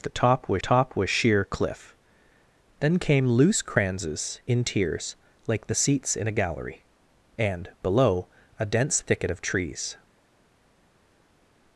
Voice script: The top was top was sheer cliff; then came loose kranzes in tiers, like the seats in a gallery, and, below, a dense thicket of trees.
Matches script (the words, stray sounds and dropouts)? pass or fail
pass